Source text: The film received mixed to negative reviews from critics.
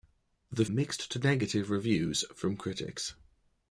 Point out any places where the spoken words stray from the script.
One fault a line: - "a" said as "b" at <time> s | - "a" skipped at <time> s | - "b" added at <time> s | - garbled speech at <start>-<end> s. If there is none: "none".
- "film received" skipped at 0.7 s